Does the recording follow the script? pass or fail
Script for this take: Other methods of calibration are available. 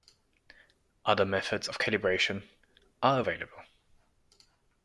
pass